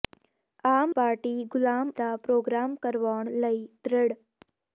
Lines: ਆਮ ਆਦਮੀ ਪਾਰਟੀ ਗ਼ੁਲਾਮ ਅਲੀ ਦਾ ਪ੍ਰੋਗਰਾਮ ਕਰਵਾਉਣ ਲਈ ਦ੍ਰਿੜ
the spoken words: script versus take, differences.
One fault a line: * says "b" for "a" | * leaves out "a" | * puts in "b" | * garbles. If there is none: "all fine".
* leaves out "ਆਦਮੀ"
* leaves out "ਅਲੀ"